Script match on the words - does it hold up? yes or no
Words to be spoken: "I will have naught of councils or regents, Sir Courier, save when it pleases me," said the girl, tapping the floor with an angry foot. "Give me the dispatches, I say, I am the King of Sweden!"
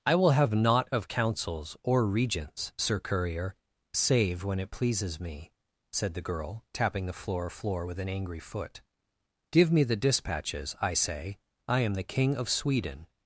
no